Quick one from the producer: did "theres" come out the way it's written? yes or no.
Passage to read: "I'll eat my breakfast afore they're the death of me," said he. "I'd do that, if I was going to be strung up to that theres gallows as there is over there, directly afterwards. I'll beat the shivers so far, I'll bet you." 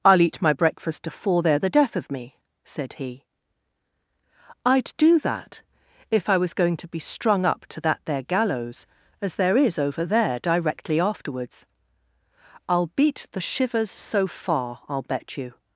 no